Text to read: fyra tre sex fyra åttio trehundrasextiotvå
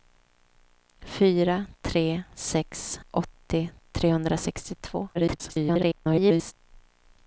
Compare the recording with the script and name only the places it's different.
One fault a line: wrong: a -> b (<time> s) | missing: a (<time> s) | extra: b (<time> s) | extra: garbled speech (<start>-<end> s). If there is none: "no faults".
missing: fyra (3.0 s)
extra: garbled speech (5.1-6.5 s)